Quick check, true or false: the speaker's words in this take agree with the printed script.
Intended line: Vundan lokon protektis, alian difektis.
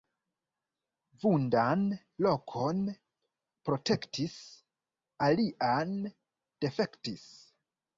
true